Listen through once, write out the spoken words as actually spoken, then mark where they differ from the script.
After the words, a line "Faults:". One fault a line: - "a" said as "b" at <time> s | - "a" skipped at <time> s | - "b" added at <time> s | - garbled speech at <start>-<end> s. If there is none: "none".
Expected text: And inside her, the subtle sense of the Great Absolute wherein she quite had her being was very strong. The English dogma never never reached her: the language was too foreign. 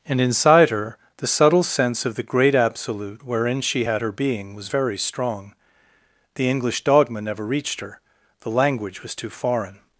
And inside her, the subtle sense of the Great Absolute wherein she had her being was very strong. The English dogma never reached her: the language was too foreign.
Faults:
- "quite" skipped at 3.9 s
- "never" skipped at 7.5 s